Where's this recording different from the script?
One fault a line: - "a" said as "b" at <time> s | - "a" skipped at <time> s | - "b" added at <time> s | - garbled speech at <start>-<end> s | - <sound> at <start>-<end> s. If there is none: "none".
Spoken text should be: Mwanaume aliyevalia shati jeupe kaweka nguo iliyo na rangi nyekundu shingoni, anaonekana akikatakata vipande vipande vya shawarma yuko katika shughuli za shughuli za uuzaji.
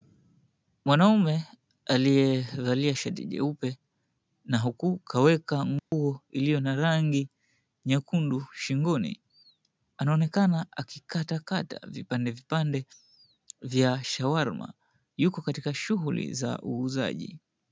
- "na huku" added at 4.5 s
- dropout at 5.8-5.9 s
- "shughuli za" skipped at 16.6 s